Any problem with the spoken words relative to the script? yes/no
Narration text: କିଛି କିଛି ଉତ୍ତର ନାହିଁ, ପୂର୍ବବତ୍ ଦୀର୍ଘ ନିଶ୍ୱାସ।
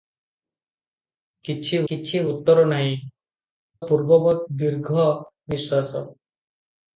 no